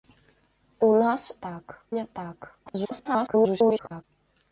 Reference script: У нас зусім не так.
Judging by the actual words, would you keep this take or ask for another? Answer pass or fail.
fail